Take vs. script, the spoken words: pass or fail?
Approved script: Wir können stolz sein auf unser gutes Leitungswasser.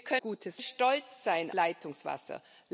fail